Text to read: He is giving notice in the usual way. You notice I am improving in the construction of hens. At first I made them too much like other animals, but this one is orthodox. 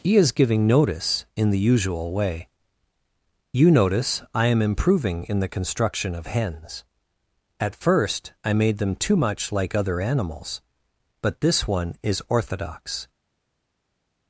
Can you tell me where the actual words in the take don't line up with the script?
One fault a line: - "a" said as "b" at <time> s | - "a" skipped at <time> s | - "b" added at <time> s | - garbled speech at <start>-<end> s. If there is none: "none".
none